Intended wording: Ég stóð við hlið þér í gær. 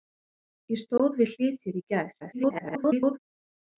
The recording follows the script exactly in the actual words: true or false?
false